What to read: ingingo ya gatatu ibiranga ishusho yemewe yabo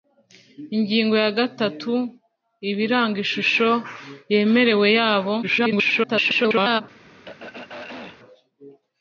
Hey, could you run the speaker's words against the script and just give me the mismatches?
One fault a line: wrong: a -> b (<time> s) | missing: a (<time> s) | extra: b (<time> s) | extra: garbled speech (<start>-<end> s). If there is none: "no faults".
extra: garbled speech (5.4-6.8 s)